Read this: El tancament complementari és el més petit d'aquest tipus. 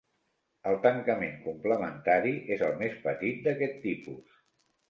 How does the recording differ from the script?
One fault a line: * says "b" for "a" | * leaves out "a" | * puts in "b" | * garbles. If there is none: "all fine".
all fine